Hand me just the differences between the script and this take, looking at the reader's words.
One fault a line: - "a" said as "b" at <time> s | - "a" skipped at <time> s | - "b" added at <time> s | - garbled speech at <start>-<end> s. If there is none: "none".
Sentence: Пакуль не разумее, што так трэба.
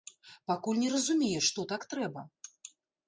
none